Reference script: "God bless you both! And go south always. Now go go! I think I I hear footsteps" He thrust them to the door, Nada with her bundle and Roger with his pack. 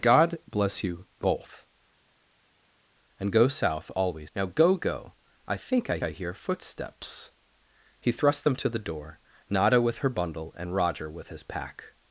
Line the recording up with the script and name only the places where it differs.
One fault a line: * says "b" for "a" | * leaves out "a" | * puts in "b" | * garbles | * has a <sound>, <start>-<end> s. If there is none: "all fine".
all fine